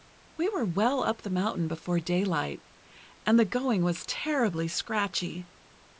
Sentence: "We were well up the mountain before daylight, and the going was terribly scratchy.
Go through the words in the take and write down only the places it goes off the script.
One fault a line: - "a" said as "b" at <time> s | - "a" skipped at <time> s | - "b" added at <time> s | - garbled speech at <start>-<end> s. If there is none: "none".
none